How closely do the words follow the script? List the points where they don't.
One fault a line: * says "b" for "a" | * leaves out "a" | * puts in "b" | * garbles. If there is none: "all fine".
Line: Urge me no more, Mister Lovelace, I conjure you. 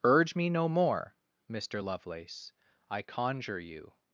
all fine